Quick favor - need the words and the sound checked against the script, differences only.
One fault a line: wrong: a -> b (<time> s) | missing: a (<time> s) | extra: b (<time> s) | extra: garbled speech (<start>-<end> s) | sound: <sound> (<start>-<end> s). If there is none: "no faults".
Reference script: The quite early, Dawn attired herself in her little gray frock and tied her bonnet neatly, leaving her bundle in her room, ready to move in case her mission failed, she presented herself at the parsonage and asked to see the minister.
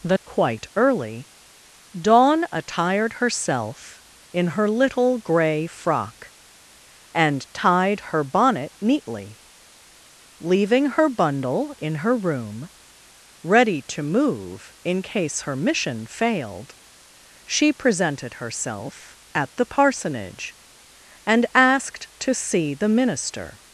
no faults